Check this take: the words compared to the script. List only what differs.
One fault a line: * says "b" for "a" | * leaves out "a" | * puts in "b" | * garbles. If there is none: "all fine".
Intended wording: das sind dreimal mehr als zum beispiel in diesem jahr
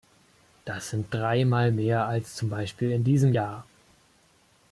all fine